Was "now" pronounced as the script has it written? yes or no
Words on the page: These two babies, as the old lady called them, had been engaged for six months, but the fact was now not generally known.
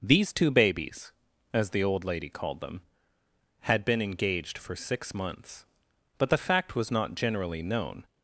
no